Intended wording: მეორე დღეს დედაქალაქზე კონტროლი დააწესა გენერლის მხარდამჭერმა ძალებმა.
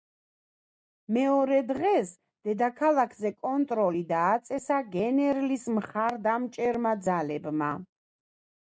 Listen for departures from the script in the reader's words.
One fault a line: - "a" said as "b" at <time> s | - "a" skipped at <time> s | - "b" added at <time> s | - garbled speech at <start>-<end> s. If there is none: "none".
none